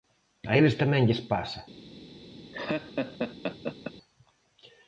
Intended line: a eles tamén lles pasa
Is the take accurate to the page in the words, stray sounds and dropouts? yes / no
no